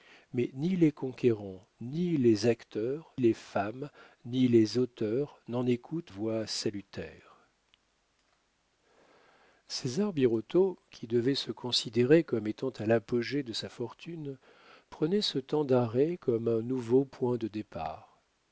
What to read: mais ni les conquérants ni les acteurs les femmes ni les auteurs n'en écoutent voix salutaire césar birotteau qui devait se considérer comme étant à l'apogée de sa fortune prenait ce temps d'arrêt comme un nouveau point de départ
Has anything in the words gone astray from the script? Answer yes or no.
no